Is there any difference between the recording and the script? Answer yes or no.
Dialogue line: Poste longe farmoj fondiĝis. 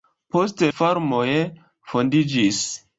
yes